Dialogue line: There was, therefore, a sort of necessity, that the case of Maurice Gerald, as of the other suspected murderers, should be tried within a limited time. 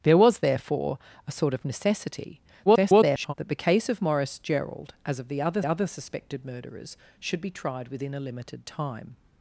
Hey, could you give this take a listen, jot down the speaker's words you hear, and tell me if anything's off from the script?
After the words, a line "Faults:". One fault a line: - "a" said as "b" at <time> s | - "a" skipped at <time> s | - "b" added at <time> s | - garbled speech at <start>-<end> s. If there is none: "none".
There was, therefore, a sort of necessity, [garbled] that the case of Maurice Gerald, as of the other other suspected murderers, should be tried within a limited time.
Faults:
- garbled speech at 2.7-3.3 s
- "other" added at 5.6 s